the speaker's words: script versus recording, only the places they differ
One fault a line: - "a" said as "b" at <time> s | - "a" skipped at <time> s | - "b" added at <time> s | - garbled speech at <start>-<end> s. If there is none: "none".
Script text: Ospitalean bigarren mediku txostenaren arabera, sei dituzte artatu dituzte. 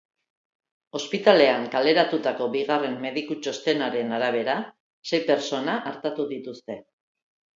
- "kaleratutako" added at 1.8 s
- "dituzte" said as "pertsona" at 5.3 s